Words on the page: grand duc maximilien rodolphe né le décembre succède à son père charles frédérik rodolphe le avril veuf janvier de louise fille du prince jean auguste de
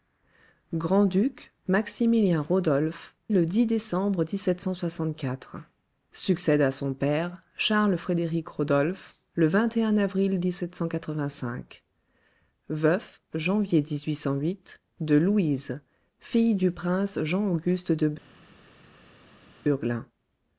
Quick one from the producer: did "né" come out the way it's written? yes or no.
no